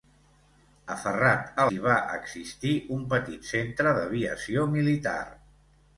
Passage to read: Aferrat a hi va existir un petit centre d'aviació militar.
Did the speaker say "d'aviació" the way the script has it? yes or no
yes